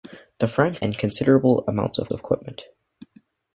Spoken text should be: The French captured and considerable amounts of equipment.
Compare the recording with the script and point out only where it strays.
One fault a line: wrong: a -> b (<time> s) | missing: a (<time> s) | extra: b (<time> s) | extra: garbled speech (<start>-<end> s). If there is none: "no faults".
missing: captured (0.8 s)
extra: of (2.1 s)